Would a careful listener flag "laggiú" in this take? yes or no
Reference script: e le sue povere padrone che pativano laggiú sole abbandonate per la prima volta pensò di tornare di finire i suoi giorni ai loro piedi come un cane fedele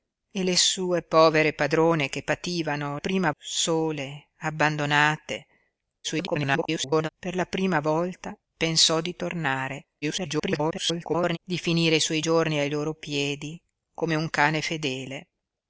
yes